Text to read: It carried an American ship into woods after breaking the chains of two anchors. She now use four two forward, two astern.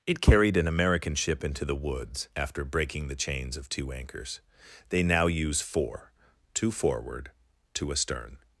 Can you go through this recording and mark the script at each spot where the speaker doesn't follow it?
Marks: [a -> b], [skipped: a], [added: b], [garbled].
It carried an American ship into [added: the] woods after breaking the chains of two anchors. [She -> They] now use four two forward, two astern.